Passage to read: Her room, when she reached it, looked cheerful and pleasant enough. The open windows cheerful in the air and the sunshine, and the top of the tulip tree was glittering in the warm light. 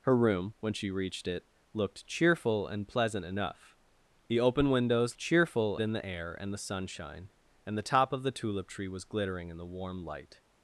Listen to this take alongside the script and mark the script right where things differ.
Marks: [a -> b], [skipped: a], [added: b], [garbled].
Her room, when she reached it, looked cheerful and pleasant enough. The open windows cheerful in the air and the sunshine, and the top of the tulip tree was glittering in the warm light.